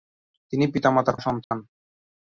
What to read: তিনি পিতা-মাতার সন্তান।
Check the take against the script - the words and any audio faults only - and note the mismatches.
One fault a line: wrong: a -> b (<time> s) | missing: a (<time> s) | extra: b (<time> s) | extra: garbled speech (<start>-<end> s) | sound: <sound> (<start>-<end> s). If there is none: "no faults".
sound: dropout (1.4-1.5 s)